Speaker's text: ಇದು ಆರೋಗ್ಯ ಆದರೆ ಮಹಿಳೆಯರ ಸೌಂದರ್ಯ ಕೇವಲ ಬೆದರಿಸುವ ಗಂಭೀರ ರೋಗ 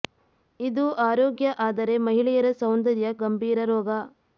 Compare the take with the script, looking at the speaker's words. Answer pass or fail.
fail